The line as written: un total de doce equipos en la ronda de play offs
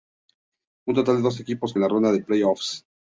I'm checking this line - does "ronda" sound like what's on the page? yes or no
yes